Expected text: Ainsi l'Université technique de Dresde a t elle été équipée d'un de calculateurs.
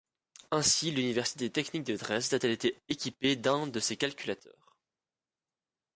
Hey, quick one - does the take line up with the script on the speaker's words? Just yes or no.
no